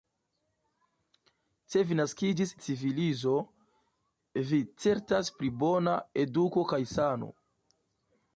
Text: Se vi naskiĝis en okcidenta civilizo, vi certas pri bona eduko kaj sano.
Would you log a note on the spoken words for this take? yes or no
yes